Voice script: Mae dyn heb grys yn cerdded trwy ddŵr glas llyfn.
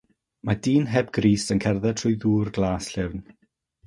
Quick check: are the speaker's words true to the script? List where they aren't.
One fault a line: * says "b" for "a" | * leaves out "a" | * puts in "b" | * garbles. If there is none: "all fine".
all fine